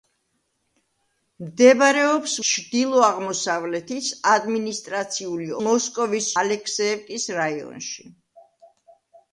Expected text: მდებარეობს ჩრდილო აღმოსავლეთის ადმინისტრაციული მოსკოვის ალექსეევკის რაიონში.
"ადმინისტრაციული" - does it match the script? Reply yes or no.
yes